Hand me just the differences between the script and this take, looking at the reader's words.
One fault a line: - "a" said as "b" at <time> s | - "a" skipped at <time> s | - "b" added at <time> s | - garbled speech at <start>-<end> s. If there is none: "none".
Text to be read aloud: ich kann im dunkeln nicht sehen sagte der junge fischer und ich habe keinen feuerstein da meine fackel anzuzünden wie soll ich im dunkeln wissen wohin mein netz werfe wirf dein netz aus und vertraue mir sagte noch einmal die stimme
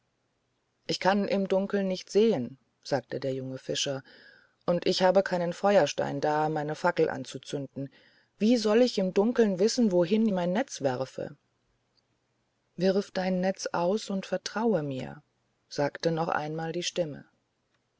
none